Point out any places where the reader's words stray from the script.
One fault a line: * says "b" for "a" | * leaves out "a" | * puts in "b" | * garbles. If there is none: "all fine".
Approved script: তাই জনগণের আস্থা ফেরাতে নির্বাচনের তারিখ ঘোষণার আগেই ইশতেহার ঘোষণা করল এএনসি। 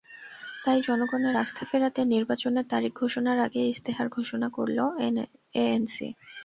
all fine